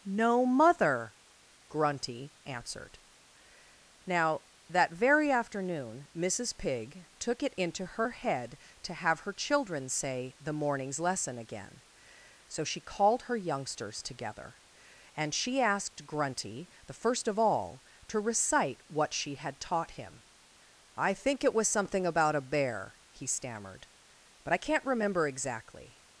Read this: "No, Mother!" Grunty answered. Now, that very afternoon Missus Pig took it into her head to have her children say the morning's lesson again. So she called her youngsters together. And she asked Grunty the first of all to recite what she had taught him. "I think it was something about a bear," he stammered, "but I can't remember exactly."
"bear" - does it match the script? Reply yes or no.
yes